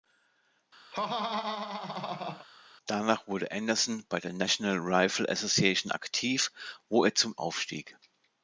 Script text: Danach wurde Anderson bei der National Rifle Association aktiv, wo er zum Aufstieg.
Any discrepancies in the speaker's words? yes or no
no